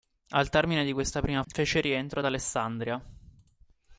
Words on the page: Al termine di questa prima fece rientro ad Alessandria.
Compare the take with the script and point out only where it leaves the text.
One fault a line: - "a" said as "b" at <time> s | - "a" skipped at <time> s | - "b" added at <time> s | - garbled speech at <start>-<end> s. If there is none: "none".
none